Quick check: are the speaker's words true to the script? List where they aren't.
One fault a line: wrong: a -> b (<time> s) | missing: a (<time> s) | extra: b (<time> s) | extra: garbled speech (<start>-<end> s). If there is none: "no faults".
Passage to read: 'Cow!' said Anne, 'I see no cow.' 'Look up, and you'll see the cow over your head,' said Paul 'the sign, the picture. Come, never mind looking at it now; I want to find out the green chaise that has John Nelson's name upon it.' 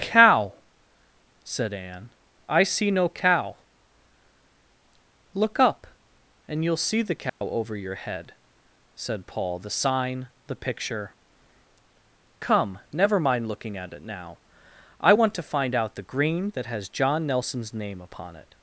missing: chaise (16.5 s)